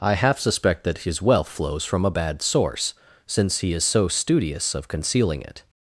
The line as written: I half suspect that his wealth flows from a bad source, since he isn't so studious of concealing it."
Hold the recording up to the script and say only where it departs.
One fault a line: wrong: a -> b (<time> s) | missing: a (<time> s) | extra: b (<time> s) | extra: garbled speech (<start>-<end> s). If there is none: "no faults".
wrong: isn't -> is (3.7 s)